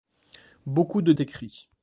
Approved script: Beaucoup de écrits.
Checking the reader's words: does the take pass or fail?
pass